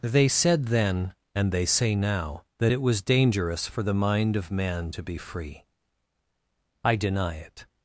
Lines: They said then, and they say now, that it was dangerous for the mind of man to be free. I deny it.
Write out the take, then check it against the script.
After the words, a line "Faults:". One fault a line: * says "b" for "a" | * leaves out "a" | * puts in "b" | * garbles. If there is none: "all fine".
They said then, and they say now, that it was dangerous for the mind of man to be free. I deny it.
Faults:
all fine